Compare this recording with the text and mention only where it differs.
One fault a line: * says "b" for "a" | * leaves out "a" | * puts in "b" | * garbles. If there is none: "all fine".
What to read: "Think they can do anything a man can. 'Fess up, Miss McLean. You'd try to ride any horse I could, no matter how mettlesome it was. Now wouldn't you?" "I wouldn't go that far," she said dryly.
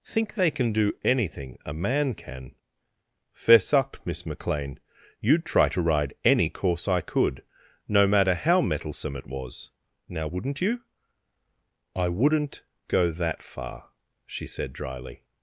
* says "course" for "horse"